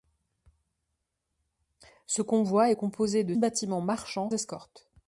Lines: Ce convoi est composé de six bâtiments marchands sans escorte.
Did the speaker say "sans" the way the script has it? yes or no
no